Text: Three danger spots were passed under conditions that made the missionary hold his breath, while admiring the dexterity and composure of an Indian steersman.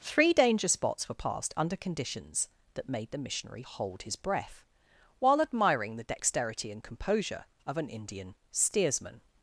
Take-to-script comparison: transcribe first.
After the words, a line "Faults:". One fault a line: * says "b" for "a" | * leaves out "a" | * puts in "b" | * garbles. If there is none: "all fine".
Three danger spots were passed under conditions that made the missionary hold his breath, while admiring the dexterity and composure of an Indian steersman.
Faults:
all fine